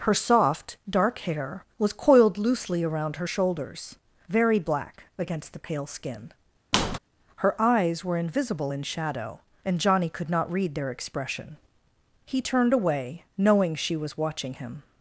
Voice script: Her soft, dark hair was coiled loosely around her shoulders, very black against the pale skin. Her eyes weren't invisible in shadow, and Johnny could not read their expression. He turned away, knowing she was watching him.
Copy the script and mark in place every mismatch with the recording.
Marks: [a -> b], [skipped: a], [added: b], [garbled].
Her soft, dark hair was coiled loosely around her shoulders, very black against the pale skin. Her eyes [weren't -> were] invisible in shadow, and Johnny could not read their expression. He turned away, knowing she was watching him.